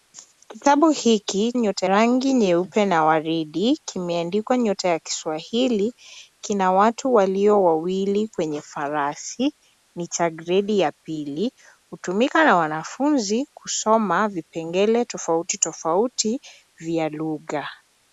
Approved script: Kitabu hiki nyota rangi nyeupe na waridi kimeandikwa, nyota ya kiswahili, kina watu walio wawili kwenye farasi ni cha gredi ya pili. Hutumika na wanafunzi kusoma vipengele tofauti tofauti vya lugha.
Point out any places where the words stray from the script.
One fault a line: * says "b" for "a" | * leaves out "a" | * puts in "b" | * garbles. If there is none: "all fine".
all fine